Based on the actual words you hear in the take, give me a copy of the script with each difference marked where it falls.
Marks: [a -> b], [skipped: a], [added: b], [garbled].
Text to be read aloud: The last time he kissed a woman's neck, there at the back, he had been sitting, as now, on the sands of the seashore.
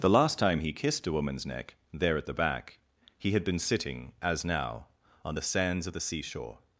The last time he kissed a woman's neck, there at the back, he had been sitting, as now, on the sands of the seashore.